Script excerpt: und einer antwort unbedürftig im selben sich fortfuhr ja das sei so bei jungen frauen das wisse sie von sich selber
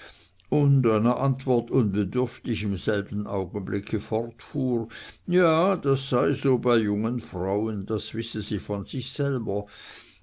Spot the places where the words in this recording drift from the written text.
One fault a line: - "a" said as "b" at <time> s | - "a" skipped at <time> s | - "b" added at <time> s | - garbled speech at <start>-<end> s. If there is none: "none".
- "sich" said as "augenblicke" at 3.3 s